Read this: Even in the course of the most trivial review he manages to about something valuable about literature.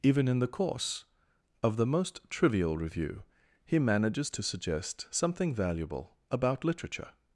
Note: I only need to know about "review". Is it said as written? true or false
true